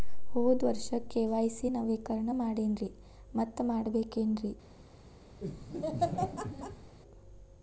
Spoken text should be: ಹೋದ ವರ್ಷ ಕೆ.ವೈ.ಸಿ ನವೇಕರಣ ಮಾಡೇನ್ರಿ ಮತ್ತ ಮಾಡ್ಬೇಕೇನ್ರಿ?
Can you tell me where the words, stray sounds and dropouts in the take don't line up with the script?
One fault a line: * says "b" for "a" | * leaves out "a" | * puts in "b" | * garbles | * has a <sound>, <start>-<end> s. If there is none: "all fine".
* has a laugh, 5.4-6.9 s